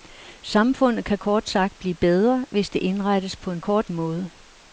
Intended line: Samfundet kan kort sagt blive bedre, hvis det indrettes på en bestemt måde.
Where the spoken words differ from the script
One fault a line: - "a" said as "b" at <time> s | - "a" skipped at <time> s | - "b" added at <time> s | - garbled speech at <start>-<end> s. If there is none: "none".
- "bestemt" said as "kort" at 3.6 s